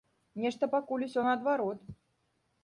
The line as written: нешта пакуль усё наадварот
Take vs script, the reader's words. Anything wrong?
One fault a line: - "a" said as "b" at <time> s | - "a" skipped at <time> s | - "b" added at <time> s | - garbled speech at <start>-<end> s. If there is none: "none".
none